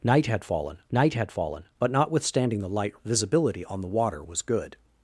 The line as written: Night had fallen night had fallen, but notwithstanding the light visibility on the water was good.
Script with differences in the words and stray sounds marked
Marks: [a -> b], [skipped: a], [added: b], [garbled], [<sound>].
Night had fallen night had fallen, but notwithstanding the light visibility on the water was good.